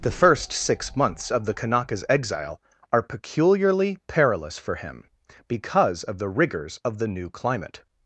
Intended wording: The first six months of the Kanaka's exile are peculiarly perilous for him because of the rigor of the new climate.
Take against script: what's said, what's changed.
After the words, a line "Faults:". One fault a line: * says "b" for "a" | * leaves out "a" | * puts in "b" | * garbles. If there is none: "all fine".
The first six months of the Kanaka's exile are peculiarly perilous for him because of the rigors of the new climate.
Faults:
* says "rigors" for "rigor"